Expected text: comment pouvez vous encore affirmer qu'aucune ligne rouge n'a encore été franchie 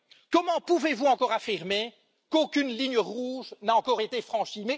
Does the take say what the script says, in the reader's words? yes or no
yes